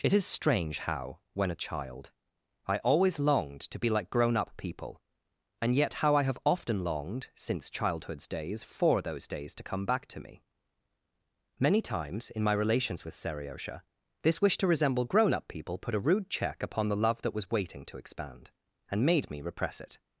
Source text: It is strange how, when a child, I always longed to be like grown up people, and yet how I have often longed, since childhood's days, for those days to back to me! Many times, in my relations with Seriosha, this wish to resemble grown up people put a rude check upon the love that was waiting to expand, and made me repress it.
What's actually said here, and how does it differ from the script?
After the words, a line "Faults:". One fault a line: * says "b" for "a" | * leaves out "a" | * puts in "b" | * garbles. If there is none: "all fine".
It is strange how, when a child, I always longed to be like grown up people, and yet how I have often longed, since childhood's days, for those days to come back to me! Many times, in my relations with Seriosha, this wish to resemble grown up people put a rude check upon the love that was waiting to expand, and made me repress it.
Faults:
* puts in "come"